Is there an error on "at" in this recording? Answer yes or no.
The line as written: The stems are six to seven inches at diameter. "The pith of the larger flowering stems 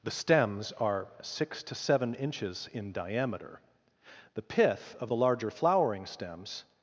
yes